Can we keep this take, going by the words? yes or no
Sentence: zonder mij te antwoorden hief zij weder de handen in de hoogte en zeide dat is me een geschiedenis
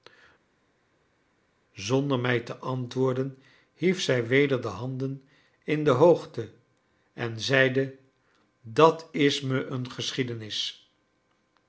yes